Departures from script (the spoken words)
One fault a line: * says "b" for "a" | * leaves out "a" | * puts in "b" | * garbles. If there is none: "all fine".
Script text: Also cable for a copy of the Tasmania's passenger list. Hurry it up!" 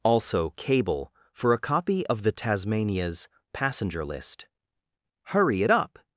all fine